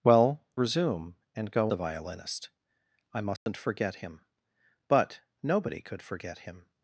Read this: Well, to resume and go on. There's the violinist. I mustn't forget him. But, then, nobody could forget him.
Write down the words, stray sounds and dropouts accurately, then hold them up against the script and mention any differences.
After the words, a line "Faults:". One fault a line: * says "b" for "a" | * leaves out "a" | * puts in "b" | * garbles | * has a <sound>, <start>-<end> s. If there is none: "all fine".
Well, resume and go the violinist. I mustn't forget him. But, nobody could forget him.
Faults:
* leaves out "to"
* leaves out "on There's"
* has a dropout, 3.4-3.5 s
* leaves out "then"